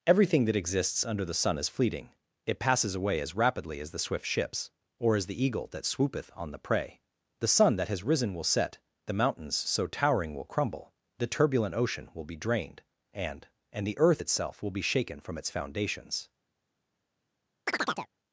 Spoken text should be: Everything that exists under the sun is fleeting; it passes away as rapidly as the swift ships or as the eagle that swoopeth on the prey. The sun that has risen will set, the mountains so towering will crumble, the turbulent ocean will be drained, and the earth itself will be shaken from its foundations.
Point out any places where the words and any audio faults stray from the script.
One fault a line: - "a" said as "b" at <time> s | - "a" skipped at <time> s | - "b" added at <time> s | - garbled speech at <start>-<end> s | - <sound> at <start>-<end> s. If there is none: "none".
- "and" added at 13.7 s
- chirp at 17.7-18.1 s